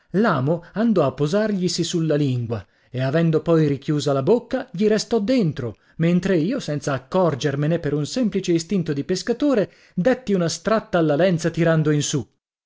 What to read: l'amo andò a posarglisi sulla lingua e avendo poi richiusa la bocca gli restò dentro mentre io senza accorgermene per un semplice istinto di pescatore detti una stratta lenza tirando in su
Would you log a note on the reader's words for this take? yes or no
yes